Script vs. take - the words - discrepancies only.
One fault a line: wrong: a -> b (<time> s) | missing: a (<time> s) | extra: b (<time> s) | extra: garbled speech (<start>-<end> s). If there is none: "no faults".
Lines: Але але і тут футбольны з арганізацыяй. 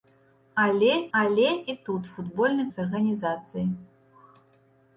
no faults